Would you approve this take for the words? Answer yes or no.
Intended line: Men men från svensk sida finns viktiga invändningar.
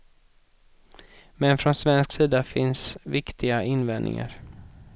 no